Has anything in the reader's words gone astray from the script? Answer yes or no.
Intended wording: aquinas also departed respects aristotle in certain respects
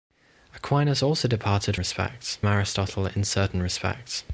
no